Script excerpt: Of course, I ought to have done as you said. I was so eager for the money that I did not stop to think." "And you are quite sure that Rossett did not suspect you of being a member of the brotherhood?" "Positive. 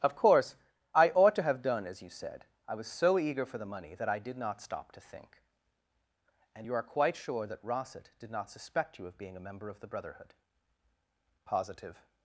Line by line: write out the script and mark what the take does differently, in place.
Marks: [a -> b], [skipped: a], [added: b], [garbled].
Of course, I ought to have done as you said. I was so eager for the money that I did not stop to think." "And you are quite sure that Rossett did not suspect you of being a member of the brotherhood?" "Positive.